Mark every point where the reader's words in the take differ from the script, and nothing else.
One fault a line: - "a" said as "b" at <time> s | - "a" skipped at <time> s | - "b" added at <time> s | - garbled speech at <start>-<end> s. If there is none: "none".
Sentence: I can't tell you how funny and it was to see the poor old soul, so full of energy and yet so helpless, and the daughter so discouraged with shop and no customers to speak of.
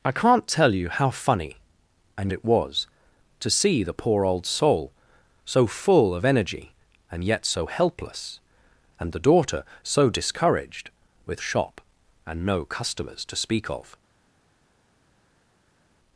none